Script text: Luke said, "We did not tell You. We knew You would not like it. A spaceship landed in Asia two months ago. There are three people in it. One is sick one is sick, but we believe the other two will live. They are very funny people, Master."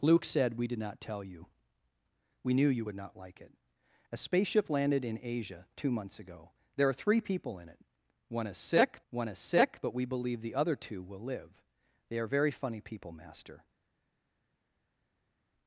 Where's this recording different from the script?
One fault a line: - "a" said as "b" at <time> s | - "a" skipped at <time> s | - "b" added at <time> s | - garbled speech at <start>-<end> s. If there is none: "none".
none